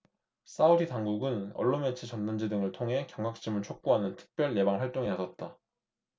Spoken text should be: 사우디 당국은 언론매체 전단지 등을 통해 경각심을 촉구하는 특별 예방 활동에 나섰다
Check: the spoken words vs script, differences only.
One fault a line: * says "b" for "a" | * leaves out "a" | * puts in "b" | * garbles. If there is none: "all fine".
all fine